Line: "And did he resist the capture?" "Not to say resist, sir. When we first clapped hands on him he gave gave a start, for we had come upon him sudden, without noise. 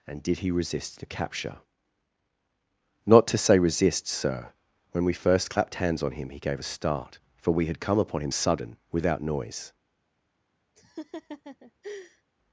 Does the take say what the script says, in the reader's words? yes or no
no